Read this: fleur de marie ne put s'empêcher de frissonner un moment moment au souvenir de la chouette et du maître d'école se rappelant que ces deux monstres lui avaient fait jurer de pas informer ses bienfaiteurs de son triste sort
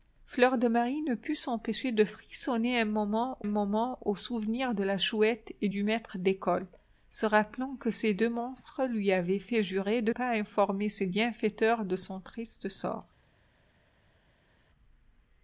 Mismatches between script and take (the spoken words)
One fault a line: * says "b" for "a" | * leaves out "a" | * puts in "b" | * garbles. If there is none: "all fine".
all fine